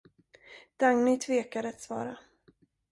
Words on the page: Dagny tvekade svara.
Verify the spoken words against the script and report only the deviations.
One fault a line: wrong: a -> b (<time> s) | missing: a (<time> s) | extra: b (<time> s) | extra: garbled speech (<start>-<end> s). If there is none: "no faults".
extra: att (1.7 s)